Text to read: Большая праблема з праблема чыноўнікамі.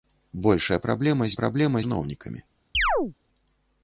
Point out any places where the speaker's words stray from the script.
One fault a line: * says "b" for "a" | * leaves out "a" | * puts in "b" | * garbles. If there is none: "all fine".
all fine